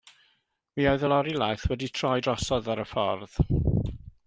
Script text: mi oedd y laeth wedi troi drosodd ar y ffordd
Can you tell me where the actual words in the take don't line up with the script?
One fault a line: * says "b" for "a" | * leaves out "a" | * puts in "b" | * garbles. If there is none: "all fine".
* puts in "lori"